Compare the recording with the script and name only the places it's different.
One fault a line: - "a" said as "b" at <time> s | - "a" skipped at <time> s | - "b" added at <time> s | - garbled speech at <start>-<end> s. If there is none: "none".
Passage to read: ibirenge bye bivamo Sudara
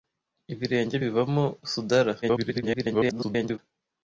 - "bye" skipped at 0.9 s
- garbled speech at 2.2-3.6 s